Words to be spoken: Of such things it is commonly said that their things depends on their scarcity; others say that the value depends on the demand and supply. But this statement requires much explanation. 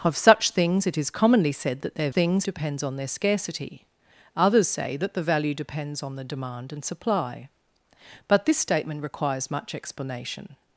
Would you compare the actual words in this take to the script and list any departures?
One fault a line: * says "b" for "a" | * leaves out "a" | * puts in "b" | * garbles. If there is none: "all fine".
all fine